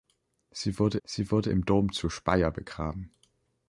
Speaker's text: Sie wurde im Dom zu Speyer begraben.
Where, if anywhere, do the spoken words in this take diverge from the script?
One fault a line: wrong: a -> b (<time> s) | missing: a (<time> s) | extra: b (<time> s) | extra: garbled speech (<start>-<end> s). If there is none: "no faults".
extra: sie wurde (1.0 s)